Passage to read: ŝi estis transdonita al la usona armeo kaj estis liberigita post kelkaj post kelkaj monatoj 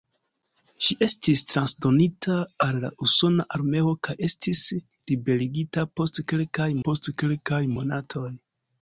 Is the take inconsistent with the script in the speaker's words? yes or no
no